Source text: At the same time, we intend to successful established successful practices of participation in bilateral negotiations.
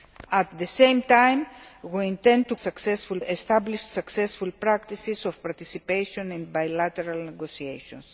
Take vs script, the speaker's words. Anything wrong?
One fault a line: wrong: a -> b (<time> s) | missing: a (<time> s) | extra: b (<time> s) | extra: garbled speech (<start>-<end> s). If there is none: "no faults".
no faults